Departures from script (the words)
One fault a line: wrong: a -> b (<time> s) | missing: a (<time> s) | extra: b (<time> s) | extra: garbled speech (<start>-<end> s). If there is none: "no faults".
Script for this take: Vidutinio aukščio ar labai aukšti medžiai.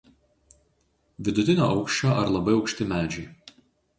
no faults